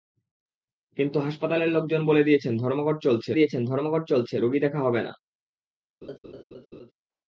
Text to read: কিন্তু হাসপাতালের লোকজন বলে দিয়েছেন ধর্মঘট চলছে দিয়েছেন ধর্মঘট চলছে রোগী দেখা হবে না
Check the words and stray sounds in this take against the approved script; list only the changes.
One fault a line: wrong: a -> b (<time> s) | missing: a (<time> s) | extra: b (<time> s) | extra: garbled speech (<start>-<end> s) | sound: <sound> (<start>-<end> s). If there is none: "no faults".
sound: laugh (6.0-6.9 s)